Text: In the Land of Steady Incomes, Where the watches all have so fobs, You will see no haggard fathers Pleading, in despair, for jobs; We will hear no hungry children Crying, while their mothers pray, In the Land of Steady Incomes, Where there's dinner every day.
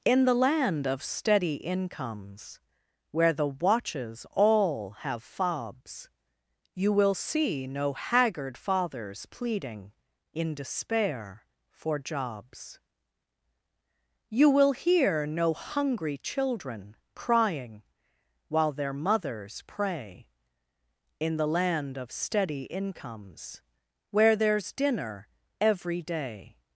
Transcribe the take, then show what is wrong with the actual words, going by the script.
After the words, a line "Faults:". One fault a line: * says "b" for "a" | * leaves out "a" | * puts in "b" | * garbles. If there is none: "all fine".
In the Land of Steady Incomes, Where the watches all have fobs, You will see no haggard fathers Pleading, in despair, for jobs; You will hear no hungry children Crying, while their mothers pray, In the Land of Steady Incomes, Where there's dinner every day.
Faults:
* leaves out "so"
* says "You" for "We"